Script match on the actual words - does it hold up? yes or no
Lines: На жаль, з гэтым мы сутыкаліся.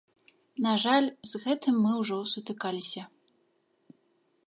no